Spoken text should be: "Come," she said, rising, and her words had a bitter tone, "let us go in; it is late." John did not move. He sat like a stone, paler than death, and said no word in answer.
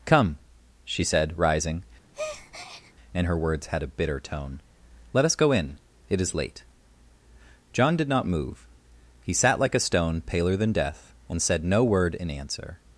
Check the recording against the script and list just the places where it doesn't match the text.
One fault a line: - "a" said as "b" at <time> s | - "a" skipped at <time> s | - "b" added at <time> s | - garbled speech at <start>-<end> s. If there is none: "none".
none